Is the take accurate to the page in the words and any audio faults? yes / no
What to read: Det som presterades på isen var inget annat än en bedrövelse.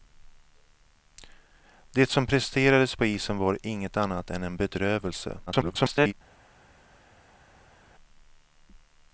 no